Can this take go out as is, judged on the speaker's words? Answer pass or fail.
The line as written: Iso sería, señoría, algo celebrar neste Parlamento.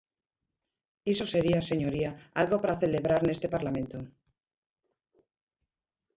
fail